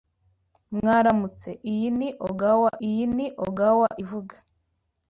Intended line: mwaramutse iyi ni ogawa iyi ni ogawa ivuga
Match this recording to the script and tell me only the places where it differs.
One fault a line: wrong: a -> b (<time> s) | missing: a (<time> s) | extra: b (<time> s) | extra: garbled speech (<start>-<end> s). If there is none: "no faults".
no faults